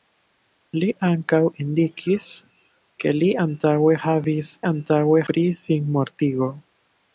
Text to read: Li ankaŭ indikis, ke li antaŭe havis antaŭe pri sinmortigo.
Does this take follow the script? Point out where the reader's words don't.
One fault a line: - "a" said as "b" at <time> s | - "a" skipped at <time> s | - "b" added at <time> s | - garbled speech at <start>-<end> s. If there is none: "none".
none